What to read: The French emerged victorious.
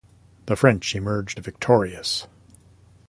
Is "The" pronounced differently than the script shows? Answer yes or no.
no